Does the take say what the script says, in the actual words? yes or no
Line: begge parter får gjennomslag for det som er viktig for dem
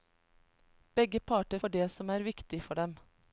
no